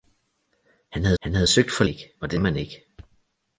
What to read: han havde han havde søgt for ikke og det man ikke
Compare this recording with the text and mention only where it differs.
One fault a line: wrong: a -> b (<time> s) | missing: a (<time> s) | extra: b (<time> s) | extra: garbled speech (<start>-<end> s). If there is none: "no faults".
no faults